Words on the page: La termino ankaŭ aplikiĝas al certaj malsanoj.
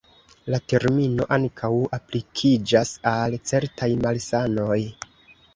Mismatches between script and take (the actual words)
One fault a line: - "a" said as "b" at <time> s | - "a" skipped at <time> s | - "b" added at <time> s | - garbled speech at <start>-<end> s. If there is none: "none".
none